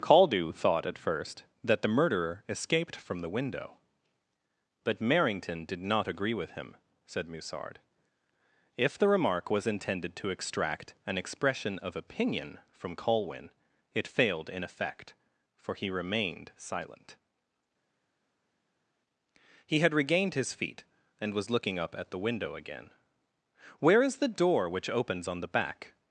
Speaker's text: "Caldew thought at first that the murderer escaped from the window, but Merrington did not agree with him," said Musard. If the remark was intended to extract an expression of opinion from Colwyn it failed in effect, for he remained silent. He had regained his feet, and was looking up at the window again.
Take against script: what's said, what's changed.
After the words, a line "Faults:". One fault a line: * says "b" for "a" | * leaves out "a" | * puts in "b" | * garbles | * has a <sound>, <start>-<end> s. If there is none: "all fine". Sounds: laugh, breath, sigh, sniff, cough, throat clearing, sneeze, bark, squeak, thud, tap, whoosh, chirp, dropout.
"Caldew thought at first that the murderer escaped from the window, but Merrington did not agree with him," said Musard. If the remark was intended to extract an expression of opinion from Colwyn it failed in effect, for he remained silent. He had regained his feet, and was looking up at the window again. "Where is the door which opens on the back
Faults:
* puts in "Where is the door which opens on the back"